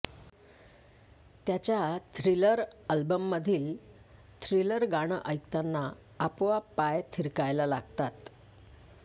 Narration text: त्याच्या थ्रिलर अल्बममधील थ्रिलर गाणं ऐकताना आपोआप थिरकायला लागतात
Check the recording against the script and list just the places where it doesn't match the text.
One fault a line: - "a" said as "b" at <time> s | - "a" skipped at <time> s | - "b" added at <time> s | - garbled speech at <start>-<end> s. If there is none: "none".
- "पाय" added at 6.7 s